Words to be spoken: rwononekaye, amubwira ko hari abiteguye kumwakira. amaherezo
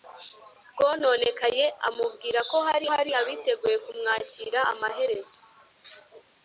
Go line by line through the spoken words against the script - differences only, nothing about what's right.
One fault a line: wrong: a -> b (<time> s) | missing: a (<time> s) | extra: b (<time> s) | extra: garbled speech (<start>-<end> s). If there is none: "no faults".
extra: hari (2.9 s)